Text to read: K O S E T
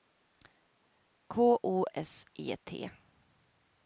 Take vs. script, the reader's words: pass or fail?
pass